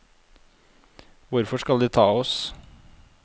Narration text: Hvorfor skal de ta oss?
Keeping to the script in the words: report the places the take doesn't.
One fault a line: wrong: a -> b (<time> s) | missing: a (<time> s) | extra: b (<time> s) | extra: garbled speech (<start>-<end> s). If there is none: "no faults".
no faults